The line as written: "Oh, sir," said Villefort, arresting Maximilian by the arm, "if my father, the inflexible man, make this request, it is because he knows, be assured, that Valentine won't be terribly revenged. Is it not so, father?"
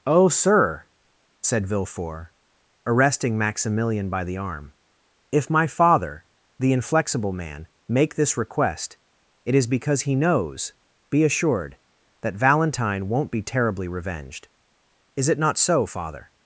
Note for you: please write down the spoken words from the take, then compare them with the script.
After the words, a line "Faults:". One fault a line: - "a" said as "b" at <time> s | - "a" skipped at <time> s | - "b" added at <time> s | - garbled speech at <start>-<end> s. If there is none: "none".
"Oh, sir," said Villefort, arresting Maximilian by the arm, "if my father, the inflexible man, make this request, it is because he knows, be assured, that Valentine won't be terribly revenged. Is it not so, father?"
Faults:
none